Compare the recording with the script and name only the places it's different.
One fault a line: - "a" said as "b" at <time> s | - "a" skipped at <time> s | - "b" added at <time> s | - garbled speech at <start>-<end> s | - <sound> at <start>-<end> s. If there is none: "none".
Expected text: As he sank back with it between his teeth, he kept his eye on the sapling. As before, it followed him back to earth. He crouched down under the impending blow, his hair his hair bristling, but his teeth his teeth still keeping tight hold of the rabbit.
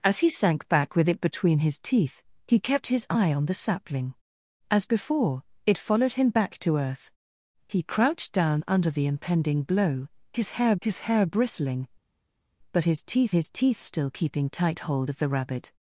none